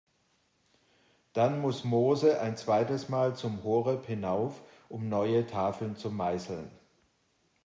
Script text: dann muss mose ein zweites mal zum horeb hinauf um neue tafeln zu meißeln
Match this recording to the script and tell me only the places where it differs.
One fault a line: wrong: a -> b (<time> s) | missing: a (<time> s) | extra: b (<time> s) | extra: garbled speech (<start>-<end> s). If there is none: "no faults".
no faults